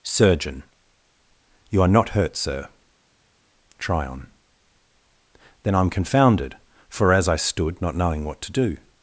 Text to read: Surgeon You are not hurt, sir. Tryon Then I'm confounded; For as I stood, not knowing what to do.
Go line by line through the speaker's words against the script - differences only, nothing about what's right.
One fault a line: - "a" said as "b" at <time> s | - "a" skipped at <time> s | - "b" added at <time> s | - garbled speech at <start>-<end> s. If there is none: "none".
none